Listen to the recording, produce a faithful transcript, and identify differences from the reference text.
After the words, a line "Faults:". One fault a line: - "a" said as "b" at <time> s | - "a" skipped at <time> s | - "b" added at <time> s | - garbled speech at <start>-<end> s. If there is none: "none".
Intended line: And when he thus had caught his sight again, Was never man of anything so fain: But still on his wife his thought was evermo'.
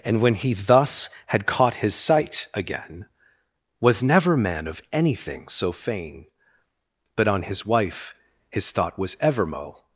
And when he thus had caught his sight again, Was never man of anything so fain: But on his wife his thought was evermo'.
Faults:
- "still" skipped at 7.3 s